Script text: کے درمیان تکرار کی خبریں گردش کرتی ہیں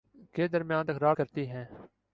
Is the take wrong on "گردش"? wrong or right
wrong